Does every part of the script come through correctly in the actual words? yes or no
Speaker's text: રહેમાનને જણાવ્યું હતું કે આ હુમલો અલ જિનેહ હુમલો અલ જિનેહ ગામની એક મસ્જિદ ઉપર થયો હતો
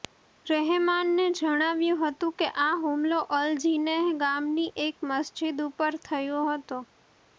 no